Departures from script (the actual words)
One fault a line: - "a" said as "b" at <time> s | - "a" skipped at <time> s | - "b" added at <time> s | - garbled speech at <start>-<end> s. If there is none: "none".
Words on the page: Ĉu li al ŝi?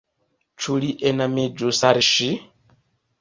- "enamiĝus" added at 1.1 s